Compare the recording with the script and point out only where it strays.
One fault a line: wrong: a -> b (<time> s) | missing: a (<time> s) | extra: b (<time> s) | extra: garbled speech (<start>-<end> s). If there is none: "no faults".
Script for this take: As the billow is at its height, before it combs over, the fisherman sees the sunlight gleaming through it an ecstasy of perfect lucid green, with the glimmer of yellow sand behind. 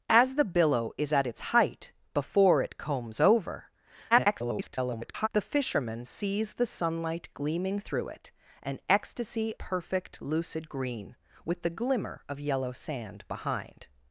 extra: garbled speech (4.1-5.3 s)
missing: of (9.5 s)